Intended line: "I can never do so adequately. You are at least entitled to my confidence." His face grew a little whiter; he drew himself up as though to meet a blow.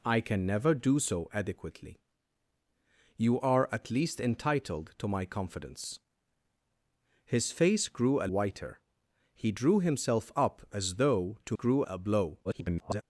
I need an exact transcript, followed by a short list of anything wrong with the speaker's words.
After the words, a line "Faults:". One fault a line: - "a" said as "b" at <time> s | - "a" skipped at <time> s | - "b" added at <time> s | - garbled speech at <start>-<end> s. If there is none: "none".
"I can never do so adequately. You are at least entitled to my confidence." His face grew a whiter; he drew himself up as though to grew a blow. [garbled]
Faults:
- "little" skipped at 8.3 s
- "meet" said as "grew" at 11.5 s
- garbled speech at 12.4-13.0 s